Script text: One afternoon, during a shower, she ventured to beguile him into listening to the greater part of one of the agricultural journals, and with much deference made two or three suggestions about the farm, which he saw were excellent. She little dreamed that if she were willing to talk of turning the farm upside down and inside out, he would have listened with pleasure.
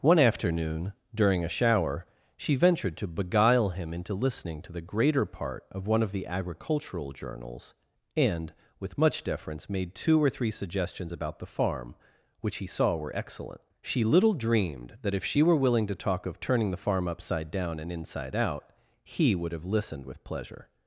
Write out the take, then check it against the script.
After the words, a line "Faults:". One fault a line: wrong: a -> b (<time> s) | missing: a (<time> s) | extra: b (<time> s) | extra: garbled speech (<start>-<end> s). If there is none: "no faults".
One afternoon, during a shower, she ventured to beguile him into listening to the greater part of one of the agricultural journals, and with much deference made two or three suggestions about the farm, which he saw were excellent. She little dreamed that if she were willing to talk of turning the farm upside down and inside out, he would have listened with pleasure.
Faults:
no faults